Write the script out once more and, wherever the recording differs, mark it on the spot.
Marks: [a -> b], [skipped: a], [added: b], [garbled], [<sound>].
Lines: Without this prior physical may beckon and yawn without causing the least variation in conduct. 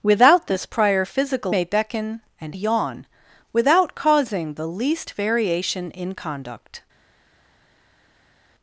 Without this prior physical may beckon and yawn without causing the least variation in conduct.